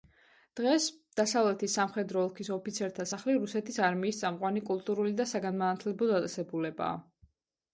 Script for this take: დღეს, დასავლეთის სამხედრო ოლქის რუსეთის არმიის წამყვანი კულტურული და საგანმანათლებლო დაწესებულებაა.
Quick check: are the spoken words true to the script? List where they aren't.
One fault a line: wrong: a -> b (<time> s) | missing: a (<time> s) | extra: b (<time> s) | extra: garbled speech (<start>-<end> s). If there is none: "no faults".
extra: ოფიცერთა სახლი (2.5 s)